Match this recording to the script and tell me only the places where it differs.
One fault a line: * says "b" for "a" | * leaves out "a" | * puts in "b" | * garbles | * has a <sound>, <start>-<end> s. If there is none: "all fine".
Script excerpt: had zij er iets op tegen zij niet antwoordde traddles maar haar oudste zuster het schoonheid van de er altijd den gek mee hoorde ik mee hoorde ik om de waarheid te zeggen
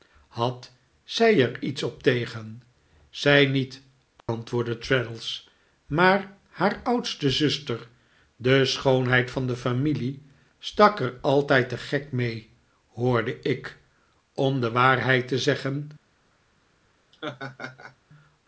* has a dropout, 4.2-4.3 s
* says "de" for "het"
* puts in "familie stak"
* leaves out "mee hoorde ik"
* has a laugh, 17.1-18.0 s